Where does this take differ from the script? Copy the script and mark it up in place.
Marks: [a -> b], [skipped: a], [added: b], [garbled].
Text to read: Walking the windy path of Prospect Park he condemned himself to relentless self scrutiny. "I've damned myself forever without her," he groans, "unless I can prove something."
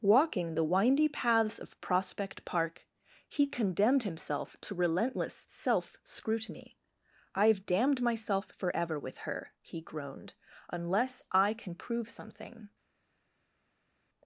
Walking the windy [path -> paths] of Prospect Park he condemned himself to relentless self scrutiny. "I've damned myself forever [without -> with] her," he [groans, -> groaned] "unless I can prove something."